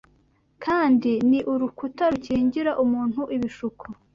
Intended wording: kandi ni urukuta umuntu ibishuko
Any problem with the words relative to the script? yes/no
yes